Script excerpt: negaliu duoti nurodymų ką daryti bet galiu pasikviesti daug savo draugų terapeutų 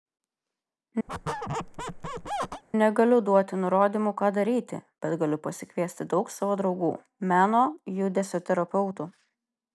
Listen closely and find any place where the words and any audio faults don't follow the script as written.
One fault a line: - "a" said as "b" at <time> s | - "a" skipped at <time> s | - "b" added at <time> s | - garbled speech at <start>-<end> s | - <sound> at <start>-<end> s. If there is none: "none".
- squeak at 1.1-2.6 s
- "meno judesio" added at 7.3 s